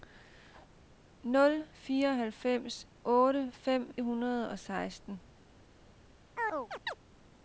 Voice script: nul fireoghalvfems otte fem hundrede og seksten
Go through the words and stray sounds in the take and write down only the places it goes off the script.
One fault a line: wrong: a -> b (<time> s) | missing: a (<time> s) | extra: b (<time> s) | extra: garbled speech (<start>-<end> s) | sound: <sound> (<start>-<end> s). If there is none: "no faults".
sound: chirp (6.4-7.0 s)